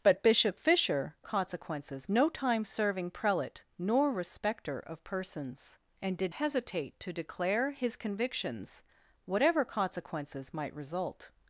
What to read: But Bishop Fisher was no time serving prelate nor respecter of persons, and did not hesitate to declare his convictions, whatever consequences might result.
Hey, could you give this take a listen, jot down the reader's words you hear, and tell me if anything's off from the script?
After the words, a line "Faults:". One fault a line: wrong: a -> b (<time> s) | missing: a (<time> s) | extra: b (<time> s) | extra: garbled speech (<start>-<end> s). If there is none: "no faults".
But Bishop Fisher consequences no time serving prelate nor respecter of persons, and did hesitate to declare his convictions, whatever consequences might result.
Faults:
wrong: was -> consequences (1.2 s)
missing: not (6.3 s)